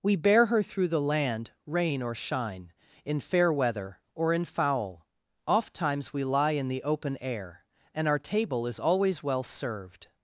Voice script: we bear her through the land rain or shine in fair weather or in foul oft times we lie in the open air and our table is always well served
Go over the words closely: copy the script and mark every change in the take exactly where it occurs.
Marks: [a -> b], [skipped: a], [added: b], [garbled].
we bear her through the land rain or shine in fair weather or in foul oft times we lie in the open air and our table is always well served